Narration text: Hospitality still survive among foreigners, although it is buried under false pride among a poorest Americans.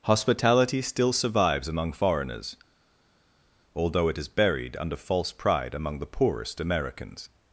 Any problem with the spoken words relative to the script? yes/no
yes